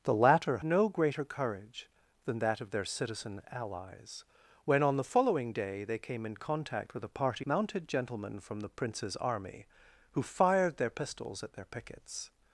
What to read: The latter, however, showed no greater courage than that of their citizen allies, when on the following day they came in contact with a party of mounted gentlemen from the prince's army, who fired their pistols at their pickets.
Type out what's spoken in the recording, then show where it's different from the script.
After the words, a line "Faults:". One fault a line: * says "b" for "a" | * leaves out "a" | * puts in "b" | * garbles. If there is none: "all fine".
The latter, no greater courage than that of their citizen allies, when on the following day they came in contact with a party mounted gentlemen from the prince's army, who fired their pistols at their pickets.
Faults:
* leaves out "however showed"
* leaves out "of"